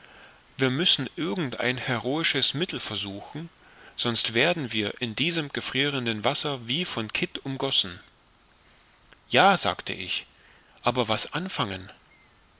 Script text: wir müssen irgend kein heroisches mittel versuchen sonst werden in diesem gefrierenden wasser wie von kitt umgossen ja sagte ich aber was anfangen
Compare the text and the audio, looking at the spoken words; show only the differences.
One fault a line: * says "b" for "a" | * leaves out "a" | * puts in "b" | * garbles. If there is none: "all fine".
* says "ein" for "kein"
* puts in "wir"